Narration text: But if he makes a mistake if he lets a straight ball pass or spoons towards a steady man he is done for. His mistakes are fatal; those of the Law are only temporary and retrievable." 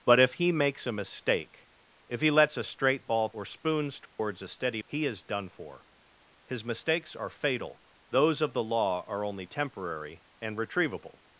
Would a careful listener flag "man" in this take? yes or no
yes